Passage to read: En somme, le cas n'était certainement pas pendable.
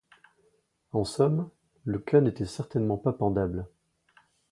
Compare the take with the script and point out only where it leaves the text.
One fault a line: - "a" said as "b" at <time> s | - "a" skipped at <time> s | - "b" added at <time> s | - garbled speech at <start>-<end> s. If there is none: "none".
none